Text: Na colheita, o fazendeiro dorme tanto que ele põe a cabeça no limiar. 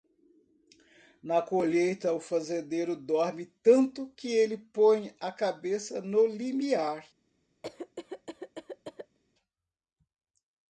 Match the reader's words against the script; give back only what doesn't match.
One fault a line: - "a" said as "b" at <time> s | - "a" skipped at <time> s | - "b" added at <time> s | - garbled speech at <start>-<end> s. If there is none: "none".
none